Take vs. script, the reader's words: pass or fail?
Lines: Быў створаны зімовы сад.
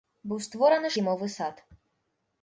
pass